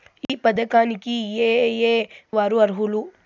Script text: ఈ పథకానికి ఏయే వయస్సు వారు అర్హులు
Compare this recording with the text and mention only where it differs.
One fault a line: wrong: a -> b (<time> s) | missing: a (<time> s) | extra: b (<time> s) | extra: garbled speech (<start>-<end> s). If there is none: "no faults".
missing: వయస్సు (1.9 s)